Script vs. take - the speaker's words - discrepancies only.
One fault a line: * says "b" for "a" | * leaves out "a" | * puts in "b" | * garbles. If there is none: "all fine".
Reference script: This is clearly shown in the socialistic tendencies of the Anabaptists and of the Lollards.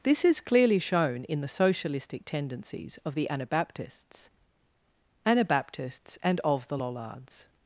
* puts in "Anabaptists"